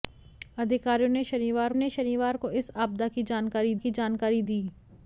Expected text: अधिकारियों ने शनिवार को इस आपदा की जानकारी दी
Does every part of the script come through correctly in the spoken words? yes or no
no